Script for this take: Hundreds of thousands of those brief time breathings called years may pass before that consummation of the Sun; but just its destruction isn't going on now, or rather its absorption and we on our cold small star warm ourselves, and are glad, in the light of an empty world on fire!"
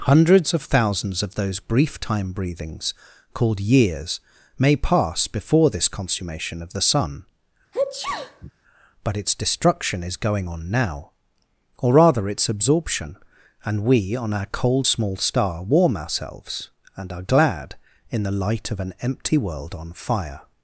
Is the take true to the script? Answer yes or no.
no